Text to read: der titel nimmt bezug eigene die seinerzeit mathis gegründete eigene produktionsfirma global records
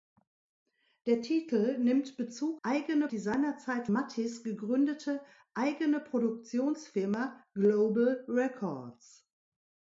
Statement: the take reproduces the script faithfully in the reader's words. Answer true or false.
true